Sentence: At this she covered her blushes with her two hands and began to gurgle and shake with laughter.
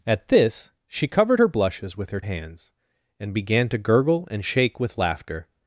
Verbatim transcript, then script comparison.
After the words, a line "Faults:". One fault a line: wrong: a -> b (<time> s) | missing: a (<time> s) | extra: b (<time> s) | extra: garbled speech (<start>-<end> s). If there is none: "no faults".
At this she covered her blushes with her hands and began to gurgle and shake with laughter.
Faults:
missing: two (2.2 s)